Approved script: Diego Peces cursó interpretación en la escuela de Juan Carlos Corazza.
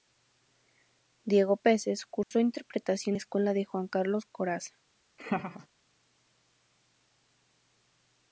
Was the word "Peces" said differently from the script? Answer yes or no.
no